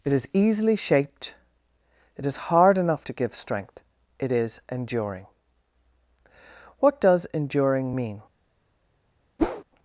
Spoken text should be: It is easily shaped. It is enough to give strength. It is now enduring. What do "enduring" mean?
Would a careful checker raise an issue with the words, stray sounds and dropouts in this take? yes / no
yes